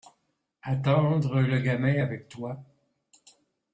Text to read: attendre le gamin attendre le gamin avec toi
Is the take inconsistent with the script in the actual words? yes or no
yes